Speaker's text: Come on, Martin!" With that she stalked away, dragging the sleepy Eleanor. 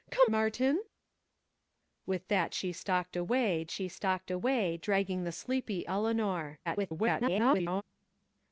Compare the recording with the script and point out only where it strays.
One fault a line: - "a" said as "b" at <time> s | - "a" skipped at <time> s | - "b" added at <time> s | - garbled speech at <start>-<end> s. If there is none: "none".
- "on" skipped at 0.3 s
- "she stalked away" added at 3.7 s
- garbled speech at 6.7-7.8 s